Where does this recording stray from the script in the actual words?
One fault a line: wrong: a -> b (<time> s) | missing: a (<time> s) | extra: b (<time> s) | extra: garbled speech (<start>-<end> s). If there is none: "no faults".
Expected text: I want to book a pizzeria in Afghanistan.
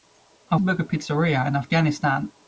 missing: want (0.6 s)